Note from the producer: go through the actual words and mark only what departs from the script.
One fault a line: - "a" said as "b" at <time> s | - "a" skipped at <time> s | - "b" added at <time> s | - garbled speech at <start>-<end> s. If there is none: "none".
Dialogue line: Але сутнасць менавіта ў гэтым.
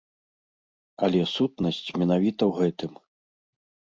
none